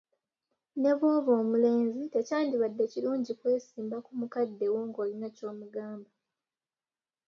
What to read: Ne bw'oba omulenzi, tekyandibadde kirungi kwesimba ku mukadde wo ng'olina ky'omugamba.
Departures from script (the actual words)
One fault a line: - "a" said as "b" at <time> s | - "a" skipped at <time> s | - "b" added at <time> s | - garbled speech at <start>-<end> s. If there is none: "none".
none